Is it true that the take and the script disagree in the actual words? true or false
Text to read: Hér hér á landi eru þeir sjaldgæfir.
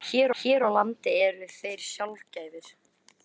false